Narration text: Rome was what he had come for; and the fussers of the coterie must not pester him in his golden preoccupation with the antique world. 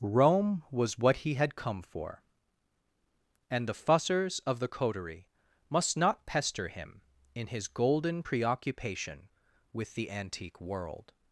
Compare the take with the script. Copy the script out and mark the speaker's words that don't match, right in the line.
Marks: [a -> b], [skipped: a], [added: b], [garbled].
Rome was what he had come for; and the fussers of the coterie must not pester him in his golden preoccupation with the antique world.